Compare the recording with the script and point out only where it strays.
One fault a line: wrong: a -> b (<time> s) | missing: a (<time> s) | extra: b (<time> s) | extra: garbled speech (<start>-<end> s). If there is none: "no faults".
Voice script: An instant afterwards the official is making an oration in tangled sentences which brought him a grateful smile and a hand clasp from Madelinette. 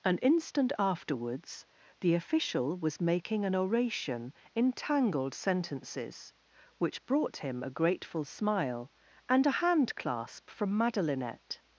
wrong: is -> was (2.8 s)